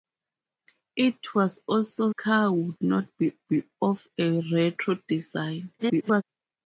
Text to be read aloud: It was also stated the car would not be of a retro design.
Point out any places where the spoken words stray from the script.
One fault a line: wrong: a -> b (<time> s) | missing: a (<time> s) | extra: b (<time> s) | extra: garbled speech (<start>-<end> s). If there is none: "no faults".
missing: stated the (2.1 s)
extra: be (3.5 s)
extra: garbled speech (5.8-6.2 s)